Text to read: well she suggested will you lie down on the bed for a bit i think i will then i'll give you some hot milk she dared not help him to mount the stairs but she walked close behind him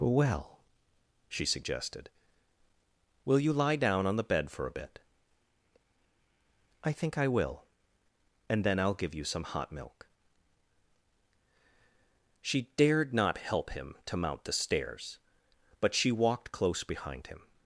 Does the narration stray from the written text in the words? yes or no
yes